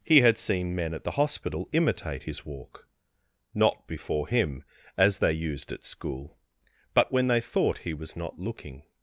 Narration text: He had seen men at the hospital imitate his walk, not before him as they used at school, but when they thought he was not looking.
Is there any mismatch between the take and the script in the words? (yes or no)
no